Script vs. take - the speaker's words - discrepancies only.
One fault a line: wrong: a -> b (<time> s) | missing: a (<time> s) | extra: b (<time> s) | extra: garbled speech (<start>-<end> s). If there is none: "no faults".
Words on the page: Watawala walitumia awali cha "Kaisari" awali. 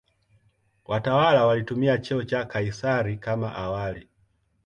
wrong: awali -> cheo (2.0 s)
extra: kama (3.2 s)